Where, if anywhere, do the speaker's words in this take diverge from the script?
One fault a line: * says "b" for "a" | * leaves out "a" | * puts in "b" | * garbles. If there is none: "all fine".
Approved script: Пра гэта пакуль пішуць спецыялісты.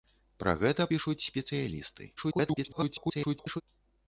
* leaves out "пакуль"
* garbles